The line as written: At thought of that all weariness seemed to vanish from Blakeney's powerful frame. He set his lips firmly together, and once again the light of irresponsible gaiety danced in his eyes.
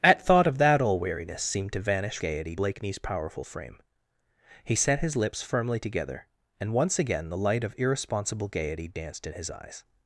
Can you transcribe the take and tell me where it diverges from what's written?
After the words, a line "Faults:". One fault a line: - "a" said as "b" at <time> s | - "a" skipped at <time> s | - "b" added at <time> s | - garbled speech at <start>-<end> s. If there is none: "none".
At thought of that all weariness seemed to vanish gaiety Blakeney's powerful frame. He set his lips firmly together, and once again the light of irresponsible gaiety danced in his eyes.
Faults:
- "from" said as "gaiety" at 2.2 s